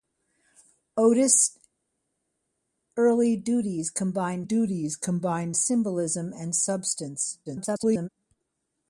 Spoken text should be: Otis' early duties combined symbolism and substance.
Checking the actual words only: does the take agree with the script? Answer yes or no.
no